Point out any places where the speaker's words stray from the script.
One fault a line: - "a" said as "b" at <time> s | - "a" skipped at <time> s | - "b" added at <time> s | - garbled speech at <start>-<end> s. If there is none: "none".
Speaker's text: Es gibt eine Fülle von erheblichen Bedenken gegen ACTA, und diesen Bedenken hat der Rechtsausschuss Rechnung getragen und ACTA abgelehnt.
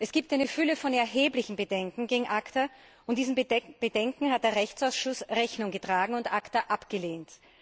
none